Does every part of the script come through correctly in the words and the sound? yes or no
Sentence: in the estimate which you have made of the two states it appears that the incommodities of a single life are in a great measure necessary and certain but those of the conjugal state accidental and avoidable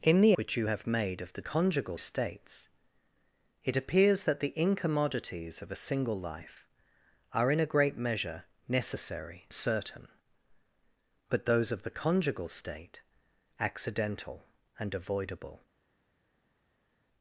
no